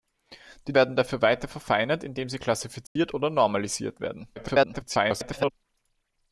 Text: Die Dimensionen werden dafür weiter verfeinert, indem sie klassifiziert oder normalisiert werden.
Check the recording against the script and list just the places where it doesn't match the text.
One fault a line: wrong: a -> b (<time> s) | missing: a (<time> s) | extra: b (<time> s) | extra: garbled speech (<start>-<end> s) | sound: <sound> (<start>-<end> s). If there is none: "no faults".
missing: Dimensionen (0.7 s)
sound: dropout (2.9-3.0 s)
extra: garbled speech (4.4-5.5 s)